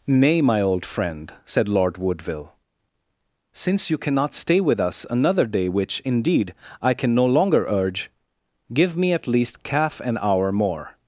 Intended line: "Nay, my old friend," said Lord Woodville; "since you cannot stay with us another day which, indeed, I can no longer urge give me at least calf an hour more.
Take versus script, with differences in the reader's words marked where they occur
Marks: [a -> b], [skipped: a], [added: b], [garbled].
"Nay, my old friend," said Lord Woodville; "since you cannot stay with us another day which, indeed, I can no longer urge give me at least calf an hour more.